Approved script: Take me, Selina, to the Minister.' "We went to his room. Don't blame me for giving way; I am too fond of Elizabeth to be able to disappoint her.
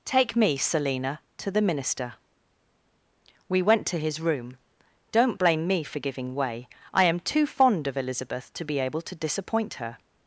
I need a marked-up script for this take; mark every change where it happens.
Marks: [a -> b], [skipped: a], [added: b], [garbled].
Take me, Selina, to the Minister.' "We went to his room. Don't blame me for giving way; I am too fond of Elizabeth to be able to disappoint her.